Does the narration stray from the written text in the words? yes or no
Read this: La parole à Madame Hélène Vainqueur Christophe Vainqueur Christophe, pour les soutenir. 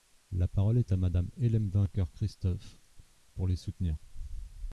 yes